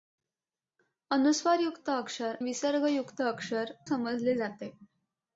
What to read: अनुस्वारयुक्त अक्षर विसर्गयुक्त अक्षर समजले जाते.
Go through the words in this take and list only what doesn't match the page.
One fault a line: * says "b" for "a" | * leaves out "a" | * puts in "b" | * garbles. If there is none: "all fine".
all fine